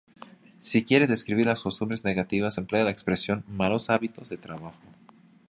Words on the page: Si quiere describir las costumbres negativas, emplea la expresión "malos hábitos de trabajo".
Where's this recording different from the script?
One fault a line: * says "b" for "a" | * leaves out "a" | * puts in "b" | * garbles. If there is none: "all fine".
all fine